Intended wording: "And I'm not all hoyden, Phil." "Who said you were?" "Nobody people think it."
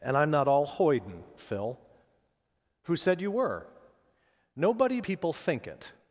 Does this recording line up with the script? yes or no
yes